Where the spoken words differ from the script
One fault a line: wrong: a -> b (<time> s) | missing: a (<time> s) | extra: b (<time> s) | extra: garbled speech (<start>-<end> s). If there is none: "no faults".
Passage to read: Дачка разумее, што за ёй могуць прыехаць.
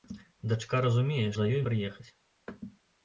missing: што (1.3 s)
missing: могуць (1.6 s)